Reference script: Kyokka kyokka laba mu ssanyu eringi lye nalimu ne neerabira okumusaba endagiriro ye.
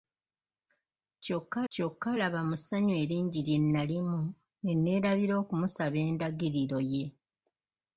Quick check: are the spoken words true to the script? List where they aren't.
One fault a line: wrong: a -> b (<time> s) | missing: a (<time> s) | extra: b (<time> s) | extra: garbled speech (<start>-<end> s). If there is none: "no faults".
no faults